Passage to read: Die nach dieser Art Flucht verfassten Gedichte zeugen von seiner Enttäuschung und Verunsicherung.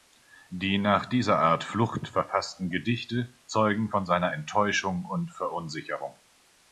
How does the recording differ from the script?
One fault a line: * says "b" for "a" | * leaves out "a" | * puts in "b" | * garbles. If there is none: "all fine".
all fine